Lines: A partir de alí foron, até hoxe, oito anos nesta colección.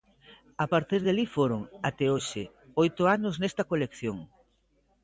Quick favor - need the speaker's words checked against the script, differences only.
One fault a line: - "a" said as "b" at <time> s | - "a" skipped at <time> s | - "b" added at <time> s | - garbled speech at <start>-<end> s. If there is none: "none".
none